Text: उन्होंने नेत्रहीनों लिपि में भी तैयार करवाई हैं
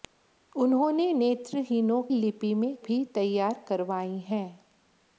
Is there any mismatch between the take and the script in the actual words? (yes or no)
no